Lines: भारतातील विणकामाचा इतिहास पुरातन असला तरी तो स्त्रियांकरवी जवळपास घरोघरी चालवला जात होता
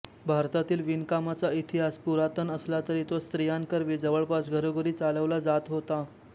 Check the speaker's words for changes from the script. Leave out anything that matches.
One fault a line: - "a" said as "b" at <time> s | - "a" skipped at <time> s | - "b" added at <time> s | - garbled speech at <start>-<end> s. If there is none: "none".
none